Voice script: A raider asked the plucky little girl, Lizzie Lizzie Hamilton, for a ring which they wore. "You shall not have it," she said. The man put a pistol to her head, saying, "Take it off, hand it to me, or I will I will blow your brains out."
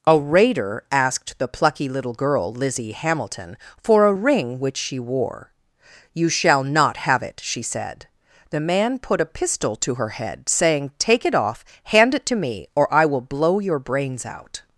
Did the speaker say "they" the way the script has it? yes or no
no